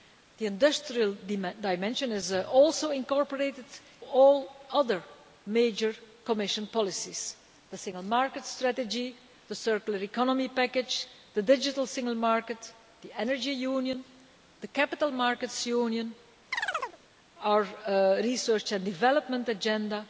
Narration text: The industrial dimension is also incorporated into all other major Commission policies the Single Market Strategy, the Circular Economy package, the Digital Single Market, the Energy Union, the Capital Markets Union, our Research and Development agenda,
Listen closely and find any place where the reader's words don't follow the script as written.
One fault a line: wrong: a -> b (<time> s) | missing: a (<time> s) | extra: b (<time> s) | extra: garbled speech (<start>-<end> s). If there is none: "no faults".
missing: into (3.6 s)